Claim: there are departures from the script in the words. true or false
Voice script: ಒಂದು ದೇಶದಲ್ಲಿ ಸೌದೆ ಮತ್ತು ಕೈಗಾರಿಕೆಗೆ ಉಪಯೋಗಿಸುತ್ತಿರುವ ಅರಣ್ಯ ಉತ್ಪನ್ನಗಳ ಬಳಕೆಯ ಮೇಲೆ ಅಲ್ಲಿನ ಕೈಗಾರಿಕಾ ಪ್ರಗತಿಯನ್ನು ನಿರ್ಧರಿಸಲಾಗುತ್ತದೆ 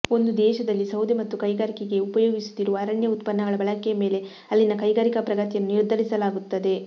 false